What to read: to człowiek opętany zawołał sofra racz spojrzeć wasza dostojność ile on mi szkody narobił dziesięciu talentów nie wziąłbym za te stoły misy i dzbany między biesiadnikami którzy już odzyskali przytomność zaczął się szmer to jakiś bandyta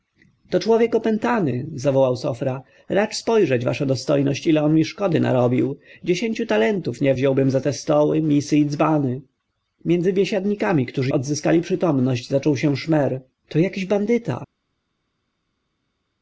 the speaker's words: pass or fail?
fail